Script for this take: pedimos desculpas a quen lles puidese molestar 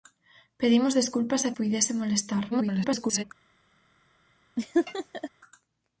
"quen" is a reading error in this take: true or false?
true